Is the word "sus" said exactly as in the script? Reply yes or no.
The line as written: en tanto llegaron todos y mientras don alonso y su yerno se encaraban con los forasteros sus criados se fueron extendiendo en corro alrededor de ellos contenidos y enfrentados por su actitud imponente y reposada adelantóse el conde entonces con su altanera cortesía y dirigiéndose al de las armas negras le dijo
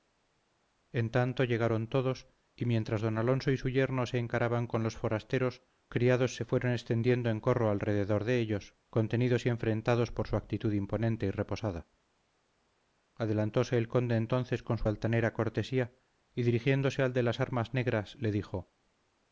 no